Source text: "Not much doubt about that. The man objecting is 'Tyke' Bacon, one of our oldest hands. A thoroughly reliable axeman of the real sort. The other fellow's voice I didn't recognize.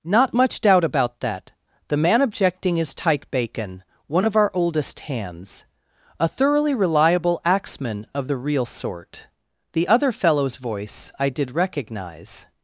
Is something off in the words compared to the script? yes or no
yes